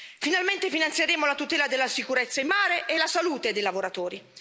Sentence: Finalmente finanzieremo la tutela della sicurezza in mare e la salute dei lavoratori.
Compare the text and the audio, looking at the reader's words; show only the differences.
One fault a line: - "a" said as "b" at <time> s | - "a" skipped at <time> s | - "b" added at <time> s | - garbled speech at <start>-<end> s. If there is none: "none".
none